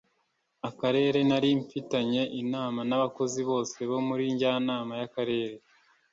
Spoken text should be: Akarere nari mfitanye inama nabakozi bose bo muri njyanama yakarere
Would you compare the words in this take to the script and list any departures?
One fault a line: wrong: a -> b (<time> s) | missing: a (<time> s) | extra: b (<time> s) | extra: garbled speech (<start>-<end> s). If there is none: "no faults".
no faults